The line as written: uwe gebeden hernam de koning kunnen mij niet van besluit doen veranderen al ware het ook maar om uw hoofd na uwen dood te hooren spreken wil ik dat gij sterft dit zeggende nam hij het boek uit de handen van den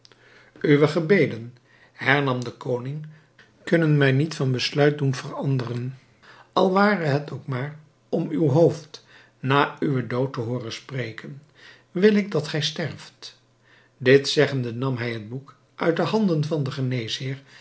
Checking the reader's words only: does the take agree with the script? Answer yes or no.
yes